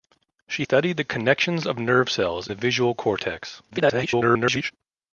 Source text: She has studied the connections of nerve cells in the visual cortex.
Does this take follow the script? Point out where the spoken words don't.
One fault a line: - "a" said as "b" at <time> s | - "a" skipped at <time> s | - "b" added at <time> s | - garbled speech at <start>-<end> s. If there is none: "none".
- "has" skipped at 0.7 s
- "in" skipped at 2.5 s
- garbled speech at 3.7-4.7 s